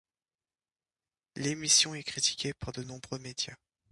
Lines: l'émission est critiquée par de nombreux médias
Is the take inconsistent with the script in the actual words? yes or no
no